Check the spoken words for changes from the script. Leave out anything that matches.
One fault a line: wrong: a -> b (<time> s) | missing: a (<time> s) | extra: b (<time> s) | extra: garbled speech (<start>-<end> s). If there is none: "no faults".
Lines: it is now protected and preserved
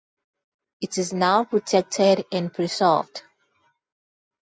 no faults